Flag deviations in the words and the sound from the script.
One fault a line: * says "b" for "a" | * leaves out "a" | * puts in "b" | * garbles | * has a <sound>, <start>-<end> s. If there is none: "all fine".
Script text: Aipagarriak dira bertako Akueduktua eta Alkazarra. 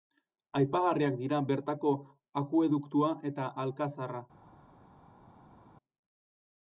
all fine